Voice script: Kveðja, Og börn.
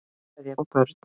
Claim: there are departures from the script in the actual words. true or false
false